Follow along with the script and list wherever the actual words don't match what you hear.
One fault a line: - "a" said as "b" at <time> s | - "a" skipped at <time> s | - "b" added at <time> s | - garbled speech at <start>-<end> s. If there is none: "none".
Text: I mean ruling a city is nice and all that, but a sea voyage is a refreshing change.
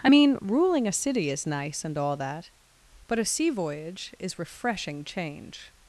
- "a" skipped at 4.4 s